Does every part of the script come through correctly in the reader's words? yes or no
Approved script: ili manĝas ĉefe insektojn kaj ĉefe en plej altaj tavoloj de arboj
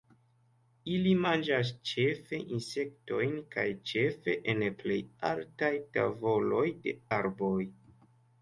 yes